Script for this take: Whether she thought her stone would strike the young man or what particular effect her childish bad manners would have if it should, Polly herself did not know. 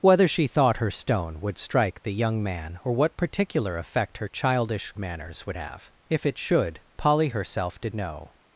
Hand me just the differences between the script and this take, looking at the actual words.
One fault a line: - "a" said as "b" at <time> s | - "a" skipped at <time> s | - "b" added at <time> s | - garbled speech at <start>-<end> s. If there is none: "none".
- "bad" skipped at 4.9 s
- "not" skipped at 7.9 s